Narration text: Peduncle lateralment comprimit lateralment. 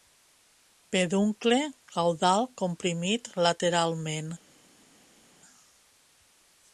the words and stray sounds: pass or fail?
fail